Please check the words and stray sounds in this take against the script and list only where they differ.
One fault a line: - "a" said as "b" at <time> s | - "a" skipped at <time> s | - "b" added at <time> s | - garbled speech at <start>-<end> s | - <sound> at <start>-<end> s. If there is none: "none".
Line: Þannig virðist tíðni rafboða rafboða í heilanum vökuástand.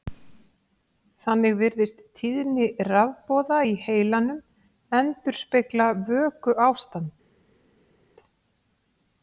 - "rafboða" skipped at 3.6 s
- "endurspegla" added at 5.0 s